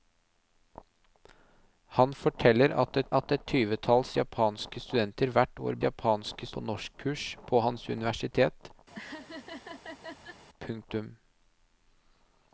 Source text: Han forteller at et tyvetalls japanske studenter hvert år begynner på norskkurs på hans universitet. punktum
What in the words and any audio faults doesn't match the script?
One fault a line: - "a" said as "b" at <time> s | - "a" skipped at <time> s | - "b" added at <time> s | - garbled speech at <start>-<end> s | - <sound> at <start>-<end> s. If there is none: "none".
- "at et" added at 3.2 s
- "begynner" said as "japanske" at 5.8 s
- laugh at 8.9-10.4 s